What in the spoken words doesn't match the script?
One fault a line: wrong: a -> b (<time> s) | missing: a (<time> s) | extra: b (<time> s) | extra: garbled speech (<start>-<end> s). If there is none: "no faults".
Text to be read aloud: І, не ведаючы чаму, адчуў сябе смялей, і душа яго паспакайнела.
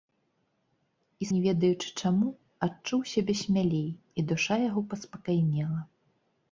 no faults